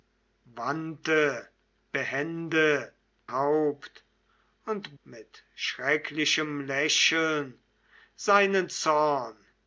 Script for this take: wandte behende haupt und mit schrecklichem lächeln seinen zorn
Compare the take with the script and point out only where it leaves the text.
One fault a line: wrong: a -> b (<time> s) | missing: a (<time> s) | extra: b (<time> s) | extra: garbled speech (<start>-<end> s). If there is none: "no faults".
no faults